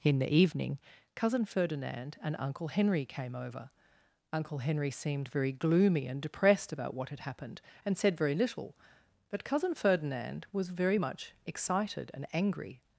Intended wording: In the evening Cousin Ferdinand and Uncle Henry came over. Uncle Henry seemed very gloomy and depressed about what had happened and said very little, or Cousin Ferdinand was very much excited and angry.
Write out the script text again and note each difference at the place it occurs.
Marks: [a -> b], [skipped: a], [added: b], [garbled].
In the evening Cousin Ferdinand and Uncle Henry came over. Uncle Henry seemed very gloomy and depressed about what had happened and said very little, [or -> but] Cousin Ferdinand was very much excited and angry.